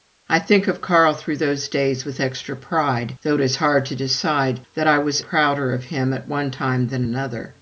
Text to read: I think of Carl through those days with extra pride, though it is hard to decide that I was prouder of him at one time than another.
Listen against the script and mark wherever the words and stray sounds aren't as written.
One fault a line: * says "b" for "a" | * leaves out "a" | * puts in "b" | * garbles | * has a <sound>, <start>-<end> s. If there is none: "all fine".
all fine